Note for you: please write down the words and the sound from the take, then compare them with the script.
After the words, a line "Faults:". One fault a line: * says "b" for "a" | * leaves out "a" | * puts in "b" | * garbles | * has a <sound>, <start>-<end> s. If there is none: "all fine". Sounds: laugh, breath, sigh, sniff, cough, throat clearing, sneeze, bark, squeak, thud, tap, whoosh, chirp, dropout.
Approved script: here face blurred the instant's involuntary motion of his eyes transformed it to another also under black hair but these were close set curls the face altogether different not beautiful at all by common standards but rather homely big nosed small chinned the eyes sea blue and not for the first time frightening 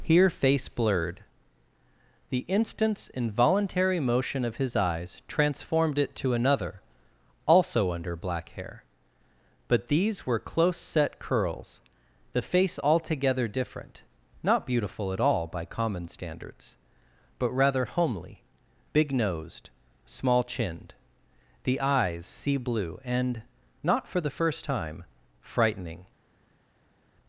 here face blurred the instant's involuntary motion of his eyes transformed it to another also under black hair but these were close set curls the face altogether different not beautiful at all by common standards but rather homely big nosed small chinned the eyes sea blue and not for the first time frightening
Faults:
all fine